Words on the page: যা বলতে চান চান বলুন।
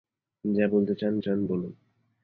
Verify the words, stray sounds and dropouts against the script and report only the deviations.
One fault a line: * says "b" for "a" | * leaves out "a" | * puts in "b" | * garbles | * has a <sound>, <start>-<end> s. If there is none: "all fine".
all fine